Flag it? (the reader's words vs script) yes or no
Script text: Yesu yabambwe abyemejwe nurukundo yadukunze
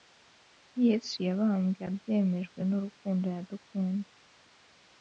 no